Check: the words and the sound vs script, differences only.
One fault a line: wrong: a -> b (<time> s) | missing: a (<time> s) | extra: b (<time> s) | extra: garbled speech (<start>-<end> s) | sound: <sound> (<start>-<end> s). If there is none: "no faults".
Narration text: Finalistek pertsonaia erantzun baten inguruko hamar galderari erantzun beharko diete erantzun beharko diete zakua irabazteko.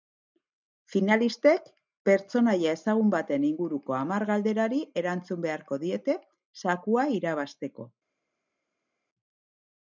wrong: erantzun -> ezagun (2.8 s)
missing: erantzun beharko diete (6.2 s)